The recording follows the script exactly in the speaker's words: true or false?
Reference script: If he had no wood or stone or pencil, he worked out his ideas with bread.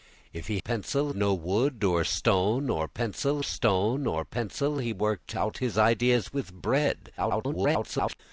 false